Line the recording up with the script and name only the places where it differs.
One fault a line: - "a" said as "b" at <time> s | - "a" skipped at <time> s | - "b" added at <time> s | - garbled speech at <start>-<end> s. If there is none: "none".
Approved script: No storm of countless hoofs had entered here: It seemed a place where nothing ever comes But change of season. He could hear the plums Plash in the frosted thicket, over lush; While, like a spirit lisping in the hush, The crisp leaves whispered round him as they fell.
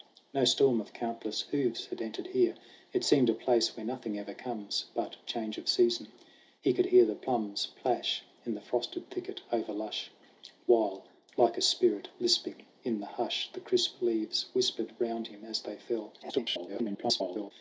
- garbled speech at 16.2-17.5 s